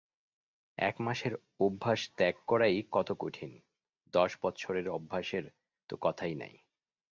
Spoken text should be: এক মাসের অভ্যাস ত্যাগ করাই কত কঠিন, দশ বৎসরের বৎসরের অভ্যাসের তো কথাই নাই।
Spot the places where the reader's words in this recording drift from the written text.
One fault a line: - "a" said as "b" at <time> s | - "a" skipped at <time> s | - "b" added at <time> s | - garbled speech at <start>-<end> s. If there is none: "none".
- "বৎসরের" skipped at 4.9 s